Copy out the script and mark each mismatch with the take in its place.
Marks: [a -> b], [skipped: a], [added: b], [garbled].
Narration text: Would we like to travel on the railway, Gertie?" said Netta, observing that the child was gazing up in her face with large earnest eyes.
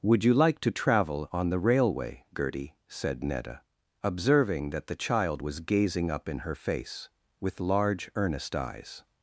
Would [we -> you] like to travel on the railway, Gertie?" said Netta, observing that the child was gazing up in her face with large earnest eyes.